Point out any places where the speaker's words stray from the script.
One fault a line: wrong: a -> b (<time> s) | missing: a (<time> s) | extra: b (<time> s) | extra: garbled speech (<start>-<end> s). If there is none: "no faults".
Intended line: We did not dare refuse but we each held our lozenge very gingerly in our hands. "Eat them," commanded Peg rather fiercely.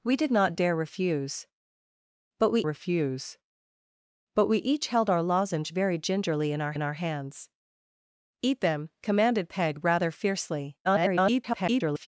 extra: refuse but we (2.6 s)
extra: in our (6.7 s)
extra: garbled speech (10.8-12.1 s)